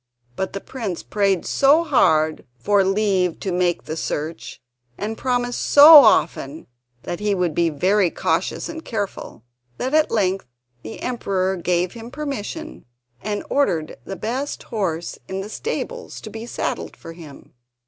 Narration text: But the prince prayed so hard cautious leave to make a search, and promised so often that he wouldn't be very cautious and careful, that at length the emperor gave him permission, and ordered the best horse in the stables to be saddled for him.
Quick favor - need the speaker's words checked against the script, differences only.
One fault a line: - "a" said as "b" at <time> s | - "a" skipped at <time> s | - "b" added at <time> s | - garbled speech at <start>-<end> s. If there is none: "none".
- "cautious" said as "for" at 2.6 s
- "a" said as "the" at 3.9 s
- "wouldn't" said as "would" at 7.3 s